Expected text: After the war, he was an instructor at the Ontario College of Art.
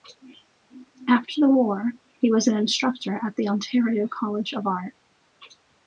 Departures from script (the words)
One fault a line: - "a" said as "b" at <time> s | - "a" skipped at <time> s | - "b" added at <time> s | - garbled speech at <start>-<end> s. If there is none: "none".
none